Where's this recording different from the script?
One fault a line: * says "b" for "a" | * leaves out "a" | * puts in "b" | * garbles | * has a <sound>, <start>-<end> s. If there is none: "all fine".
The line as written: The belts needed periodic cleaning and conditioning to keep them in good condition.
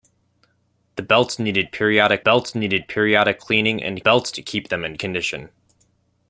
* puts in "belts needed periodic"
* says "belts" for "conditioning"
* leaves out "good"